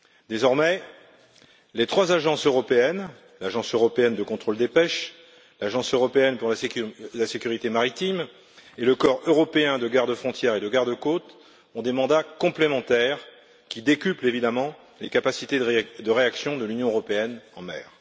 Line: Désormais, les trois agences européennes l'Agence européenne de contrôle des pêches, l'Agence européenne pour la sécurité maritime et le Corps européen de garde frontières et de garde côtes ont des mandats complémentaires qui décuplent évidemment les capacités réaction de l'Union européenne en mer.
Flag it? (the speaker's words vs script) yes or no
yes